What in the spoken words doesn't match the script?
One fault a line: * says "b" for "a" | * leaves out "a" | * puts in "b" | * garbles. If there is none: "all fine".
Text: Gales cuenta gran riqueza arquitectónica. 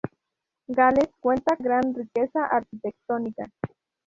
all fine